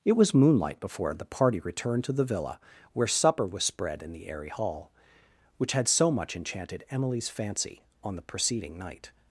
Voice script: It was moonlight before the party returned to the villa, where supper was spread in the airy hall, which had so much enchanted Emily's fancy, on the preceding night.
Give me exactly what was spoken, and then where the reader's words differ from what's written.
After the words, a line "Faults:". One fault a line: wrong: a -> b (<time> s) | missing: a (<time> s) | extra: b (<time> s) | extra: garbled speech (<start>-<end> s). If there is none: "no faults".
It was moonlight before the party returned to the villa, where supper was spread in the airy hall, which had so much enchanted Emily's fancy, on the preceding night.
Faults:
no faults